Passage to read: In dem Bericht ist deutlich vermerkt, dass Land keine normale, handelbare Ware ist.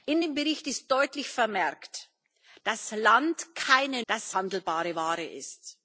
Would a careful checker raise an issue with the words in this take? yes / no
yes